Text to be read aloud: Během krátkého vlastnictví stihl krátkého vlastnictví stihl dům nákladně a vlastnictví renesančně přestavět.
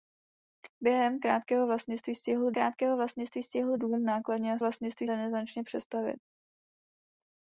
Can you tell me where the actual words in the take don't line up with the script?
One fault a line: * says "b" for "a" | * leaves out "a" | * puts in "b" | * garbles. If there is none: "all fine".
all fine